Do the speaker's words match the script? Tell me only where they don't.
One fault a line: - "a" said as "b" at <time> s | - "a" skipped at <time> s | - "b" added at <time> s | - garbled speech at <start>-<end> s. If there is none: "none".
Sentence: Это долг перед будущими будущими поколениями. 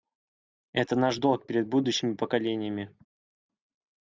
- "наш" added at 0.9 s
- "будущими" skipped at 2.2 s